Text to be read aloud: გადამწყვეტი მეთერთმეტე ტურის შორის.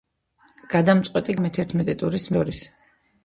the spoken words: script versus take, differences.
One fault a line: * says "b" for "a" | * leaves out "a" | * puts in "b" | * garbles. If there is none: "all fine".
all fine